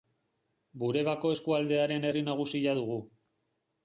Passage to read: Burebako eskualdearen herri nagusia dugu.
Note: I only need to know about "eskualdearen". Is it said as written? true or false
true